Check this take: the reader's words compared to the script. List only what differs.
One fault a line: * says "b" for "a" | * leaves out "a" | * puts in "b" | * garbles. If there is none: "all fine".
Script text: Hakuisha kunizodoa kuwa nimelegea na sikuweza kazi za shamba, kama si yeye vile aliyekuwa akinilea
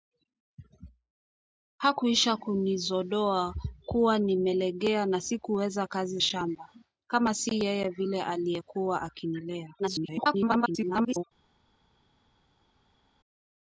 * leaves out "za"
* garbles